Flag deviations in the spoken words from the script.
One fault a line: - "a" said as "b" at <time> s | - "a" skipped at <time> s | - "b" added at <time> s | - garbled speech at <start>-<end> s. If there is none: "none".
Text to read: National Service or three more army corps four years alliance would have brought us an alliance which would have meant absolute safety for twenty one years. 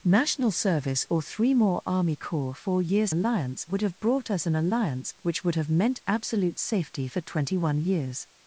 none